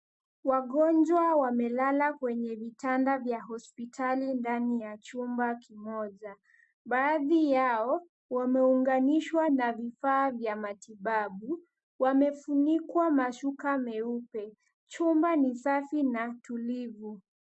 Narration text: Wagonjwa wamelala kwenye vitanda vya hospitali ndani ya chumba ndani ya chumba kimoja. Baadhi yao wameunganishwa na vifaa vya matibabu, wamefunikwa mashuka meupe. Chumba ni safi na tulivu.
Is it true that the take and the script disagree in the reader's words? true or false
true